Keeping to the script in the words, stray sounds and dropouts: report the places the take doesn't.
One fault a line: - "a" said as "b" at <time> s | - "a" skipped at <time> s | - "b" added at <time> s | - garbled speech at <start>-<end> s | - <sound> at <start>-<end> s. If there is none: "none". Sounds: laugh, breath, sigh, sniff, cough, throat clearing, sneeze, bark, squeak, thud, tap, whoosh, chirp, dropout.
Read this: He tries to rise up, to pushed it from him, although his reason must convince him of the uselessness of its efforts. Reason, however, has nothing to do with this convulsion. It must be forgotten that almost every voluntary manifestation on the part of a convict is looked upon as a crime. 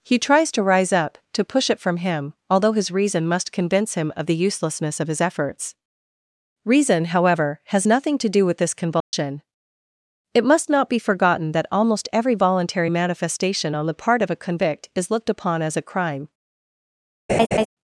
- "pushed" said as "push" at 1.4 s
- "its" said as "his" at 5.1 s
- dropout at 9.0-9.1 s
- "not" added at 10.7 s
- laugh at 17.3-17.7 s